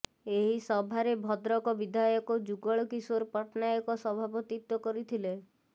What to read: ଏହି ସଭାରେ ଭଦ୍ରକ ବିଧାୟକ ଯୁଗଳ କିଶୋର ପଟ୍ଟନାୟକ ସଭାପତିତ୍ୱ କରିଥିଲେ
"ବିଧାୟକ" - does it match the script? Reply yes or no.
yes